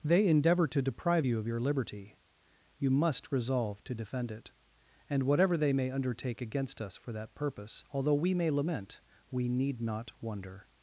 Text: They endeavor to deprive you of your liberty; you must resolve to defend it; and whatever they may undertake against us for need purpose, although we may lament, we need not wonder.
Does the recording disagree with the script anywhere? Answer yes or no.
yes